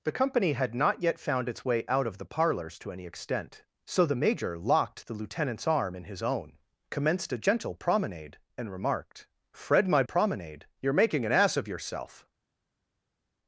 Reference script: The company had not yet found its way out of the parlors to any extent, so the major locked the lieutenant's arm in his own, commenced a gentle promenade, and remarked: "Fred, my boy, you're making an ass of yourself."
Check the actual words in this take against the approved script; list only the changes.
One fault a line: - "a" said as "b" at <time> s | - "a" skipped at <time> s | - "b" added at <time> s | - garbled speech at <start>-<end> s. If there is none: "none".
- "boy" said as "promenade" at 10.0 s